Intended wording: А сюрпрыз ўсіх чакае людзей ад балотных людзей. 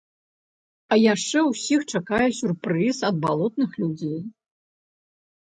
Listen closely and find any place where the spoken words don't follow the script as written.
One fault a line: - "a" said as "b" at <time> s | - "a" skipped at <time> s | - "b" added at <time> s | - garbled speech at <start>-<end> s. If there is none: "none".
- "сюрпрыз" said as "яшчэ" at 1.1 s
- "людзей" said as "сюрпрыз" at 2.4 s